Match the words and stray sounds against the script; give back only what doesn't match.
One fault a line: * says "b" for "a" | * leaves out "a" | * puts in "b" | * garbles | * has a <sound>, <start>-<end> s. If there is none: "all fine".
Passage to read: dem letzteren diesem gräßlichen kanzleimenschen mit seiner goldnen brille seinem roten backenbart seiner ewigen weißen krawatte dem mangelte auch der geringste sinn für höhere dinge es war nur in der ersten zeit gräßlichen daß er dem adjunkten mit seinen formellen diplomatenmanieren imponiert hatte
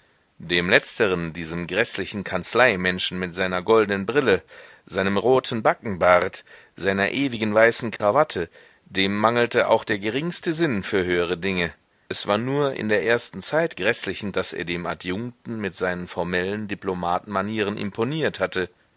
* has a dropout, 8.0-8.0 s